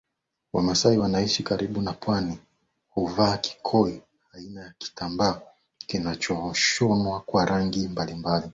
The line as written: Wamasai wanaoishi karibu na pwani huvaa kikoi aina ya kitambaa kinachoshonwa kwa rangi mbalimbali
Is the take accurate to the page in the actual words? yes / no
yes